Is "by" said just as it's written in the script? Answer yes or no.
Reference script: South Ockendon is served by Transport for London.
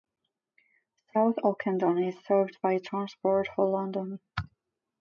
yes